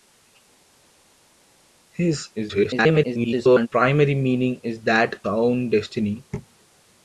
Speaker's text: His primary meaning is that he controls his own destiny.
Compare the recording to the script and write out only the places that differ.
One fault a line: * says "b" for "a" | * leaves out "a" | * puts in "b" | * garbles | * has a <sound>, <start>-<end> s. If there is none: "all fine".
* garbles
* leaves out "he controls his"